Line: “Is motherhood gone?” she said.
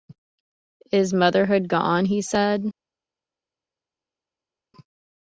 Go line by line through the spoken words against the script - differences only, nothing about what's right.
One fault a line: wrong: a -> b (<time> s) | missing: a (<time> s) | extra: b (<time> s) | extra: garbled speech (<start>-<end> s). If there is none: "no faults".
wrong: she -> he (2.1 s)